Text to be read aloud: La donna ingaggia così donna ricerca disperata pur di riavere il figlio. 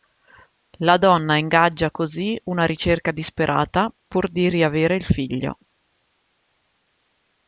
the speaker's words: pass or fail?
fail